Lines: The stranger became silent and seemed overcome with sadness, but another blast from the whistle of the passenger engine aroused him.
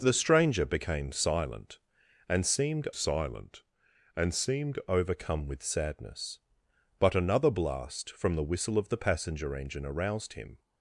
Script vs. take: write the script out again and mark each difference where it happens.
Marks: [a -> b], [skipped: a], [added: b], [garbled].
The stranger became silent and seemed [added: silent and seemed] overcome with sadness, but another blast from the whistle of the passenger engine aroused him.